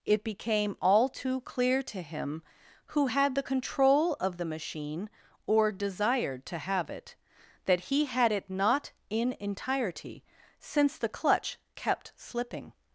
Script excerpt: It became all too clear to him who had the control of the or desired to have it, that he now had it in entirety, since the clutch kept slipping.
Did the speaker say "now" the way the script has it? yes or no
no